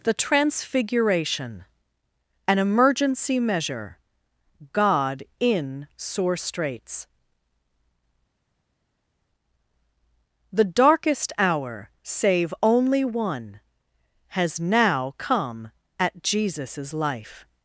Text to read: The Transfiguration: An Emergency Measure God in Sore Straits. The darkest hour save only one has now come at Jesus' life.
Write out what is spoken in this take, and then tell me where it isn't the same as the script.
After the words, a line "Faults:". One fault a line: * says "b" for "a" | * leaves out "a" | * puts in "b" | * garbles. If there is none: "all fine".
The Transfiguration: An Emergency Measure God in Sore Straits. The darkest hour save only one has now come at Jesus' life.
Faults:
all fine